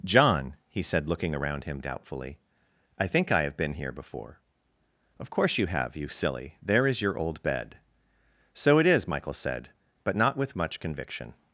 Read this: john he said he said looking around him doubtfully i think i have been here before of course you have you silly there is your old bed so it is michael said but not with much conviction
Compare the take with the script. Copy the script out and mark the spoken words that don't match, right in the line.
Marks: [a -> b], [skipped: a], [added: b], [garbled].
john he said [skipped: he said] looking around him doubtfully i think i have been here before of course you have you silly there is your old bed so it is michael said but not with much conviction